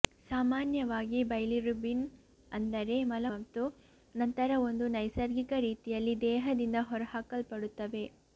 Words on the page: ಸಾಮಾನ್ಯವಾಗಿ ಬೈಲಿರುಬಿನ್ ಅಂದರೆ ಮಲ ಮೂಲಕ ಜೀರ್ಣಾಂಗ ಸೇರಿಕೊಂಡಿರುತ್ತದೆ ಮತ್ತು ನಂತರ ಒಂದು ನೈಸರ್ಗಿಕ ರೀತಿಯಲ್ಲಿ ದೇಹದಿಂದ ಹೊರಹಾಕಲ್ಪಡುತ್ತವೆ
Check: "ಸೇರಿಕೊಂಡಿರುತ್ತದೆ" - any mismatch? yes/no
yes